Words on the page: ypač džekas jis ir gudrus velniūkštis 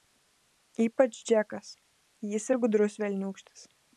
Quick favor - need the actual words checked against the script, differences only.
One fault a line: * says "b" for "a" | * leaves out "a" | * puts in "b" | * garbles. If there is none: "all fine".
all fine